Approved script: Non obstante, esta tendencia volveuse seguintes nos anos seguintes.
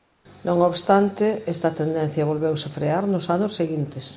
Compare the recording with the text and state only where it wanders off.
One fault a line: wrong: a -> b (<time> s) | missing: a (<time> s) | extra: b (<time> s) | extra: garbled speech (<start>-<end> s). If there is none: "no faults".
wrong: seguintes -> frear (2.8 s)